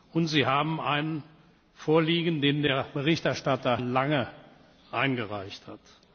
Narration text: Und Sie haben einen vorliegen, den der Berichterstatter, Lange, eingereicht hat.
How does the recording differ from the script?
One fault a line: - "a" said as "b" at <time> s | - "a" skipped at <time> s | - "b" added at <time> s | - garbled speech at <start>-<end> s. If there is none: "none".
none